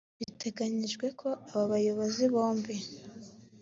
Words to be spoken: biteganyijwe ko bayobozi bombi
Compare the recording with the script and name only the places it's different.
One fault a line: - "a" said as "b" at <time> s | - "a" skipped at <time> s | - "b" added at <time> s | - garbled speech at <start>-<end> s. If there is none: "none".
- "aba" added at 1.5 s